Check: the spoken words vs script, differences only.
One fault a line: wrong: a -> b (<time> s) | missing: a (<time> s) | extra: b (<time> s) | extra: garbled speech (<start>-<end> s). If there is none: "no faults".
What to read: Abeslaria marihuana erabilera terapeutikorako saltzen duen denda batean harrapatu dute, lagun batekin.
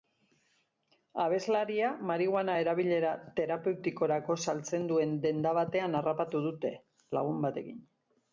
no faults